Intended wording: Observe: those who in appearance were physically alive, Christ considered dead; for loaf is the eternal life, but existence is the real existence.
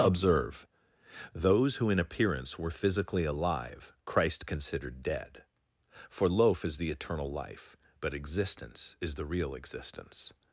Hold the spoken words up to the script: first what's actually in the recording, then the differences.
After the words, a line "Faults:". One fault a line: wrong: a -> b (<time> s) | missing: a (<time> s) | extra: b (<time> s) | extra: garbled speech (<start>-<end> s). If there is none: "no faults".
Observe: those who in appearance were physically alive, Christ considered dead; for loaf is the eternal life, but existence is the real existence.
Faults:
no faults